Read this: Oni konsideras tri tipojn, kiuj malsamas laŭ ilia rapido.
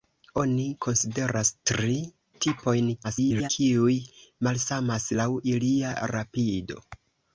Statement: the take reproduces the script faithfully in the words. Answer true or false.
false